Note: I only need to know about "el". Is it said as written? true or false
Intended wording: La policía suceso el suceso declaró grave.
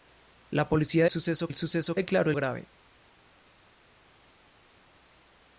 true